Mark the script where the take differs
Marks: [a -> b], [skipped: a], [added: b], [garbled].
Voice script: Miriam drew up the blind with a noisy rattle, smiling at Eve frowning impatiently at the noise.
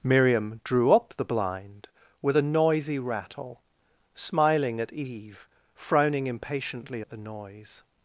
Miriam drew up the blind with a noisy rattle, smiling at Eve frowning impatiently at the noise.